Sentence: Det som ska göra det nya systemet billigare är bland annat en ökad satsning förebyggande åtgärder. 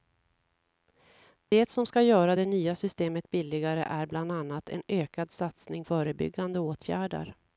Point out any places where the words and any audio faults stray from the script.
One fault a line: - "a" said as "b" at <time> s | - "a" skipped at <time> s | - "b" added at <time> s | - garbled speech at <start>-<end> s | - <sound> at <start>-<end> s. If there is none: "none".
- dropout at 1.5-1.5 s